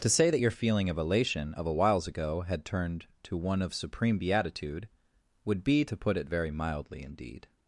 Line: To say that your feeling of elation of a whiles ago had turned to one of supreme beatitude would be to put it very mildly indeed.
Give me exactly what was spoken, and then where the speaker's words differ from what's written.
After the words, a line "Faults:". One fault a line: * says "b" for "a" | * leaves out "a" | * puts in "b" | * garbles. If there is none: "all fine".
To say that your feeling of elation of a whiles ago had turned to one of supreme beatitude would be to put it very mildly indeed.
Faults:
all fine